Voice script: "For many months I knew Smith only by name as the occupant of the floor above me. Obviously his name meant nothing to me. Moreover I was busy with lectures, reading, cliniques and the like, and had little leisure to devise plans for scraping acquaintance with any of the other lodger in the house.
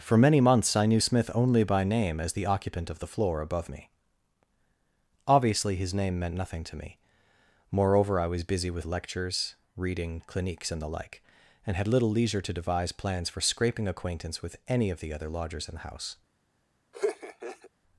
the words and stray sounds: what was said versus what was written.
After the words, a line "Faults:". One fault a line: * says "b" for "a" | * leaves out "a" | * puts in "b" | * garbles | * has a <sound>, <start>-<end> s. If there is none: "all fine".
"For many months I knew Smith only by name as the occupant of the floor above me. Obviously his name meant nothing to me. Moreover I was busy with lectures, reading, cliniques and the like, and had little leisure to devise plans for scraping acquaintance with any of the other lodgers in the house.
Faults:
* says "lodgers" for "lodger"
* has a laugh, 16.9-17.7 s